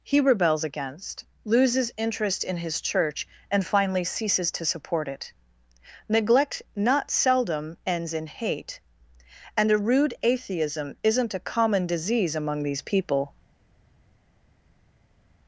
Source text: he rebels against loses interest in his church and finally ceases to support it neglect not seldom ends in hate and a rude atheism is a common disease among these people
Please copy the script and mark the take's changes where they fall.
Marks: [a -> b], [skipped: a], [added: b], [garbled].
he rebels against loses interest in his church and finally ceases to support it neglect not seldom ends in hate and a rude atheism [is -> isn't] a common disease among these people